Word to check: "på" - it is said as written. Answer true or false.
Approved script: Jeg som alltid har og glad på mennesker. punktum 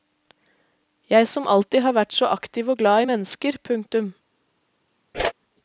false